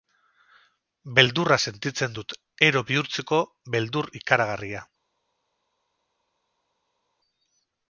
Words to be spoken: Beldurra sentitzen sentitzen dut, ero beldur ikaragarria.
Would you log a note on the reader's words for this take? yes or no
yes